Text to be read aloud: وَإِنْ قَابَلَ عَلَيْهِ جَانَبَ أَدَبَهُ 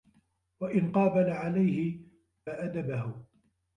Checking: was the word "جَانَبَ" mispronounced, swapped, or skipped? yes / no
yes